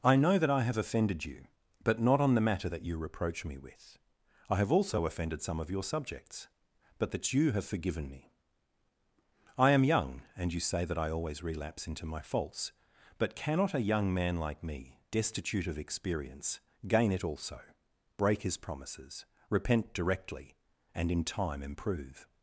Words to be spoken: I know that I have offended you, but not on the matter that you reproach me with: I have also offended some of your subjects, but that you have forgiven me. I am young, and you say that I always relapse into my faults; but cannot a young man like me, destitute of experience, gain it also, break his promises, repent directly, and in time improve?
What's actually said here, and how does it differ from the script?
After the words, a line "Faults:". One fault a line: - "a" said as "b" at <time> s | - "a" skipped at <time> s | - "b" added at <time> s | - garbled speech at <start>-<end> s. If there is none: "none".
I know that I have offended you, but not on the matter that you reproach me with: I have also offended some of your subjects, but that you have forgiven me. I am young, and you say that I always relapse into my faults; but cannot a young man like me, destitute of experience, gain it also, break his promises, repent directly, and in time improve?
Faults:
none